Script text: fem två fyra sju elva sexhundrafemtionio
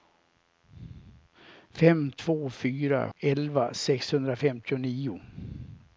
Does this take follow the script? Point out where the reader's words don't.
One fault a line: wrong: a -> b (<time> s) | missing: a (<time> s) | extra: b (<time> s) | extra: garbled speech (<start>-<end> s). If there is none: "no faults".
missing: sju (3.1 s)